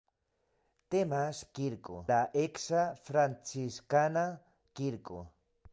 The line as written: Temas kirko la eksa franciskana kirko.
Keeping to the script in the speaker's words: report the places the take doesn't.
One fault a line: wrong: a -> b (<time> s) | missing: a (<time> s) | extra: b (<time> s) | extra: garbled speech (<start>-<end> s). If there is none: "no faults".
no faults